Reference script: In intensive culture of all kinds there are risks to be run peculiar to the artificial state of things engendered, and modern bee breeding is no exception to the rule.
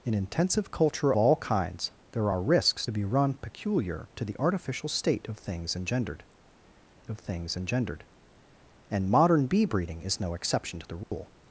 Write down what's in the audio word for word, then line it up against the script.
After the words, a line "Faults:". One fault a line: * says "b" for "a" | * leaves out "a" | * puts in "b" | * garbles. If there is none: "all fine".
In intensive culture all kinds there are risks be run peculiar to the artificial state of things engendered of things engendered, and modern bee breeding is no exception to the rule.
Faults:
* leaves out "of"
* leaves out "to"
* puts in "of things engendered"